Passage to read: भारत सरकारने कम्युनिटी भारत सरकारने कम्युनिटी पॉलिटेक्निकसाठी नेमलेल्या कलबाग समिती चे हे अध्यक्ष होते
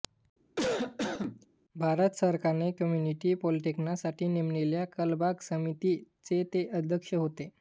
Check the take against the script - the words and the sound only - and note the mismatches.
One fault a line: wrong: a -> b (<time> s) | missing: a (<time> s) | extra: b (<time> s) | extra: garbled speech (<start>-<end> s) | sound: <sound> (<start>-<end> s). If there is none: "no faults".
sound: cough (0.6-1.5 s)
missing: भारत सरकारने कम्युनिटी (3.3 s)
wrong: हे -> ते (6.5 s)